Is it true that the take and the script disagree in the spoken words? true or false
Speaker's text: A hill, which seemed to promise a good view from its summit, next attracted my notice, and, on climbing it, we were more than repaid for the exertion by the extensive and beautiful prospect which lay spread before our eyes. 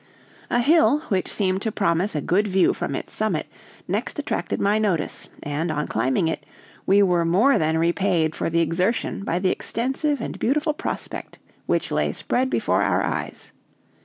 false